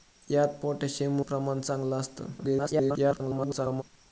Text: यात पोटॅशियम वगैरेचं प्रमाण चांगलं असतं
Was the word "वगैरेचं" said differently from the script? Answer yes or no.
yes